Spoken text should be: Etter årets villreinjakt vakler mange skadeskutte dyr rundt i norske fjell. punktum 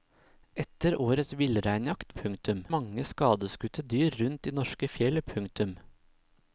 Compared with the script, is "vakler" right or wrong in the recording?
wrong